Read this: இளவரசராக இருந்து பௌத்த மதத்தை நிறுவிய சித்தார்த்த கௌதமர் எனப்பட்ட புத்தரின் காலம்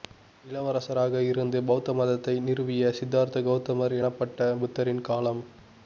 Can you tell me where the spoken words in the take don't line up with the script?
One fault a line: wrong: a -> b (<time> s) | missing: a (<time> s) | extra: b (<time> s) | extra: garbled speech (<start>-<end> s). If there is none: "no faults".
no faults